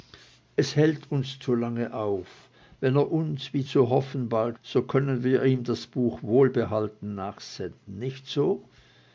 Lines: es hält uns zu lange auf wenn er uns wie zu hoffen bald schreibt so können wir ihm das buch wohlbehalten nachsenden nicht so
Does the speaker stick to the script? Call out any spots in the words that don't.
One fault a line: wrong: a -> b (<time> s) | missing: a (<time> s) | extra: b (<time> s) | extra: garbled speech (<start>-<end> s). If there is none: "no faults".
missing: schreibt (4.6 s)